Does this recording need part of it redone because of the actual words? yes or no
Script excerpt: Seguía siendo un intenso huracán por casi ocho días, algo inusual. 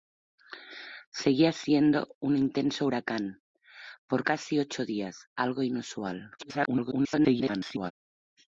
yes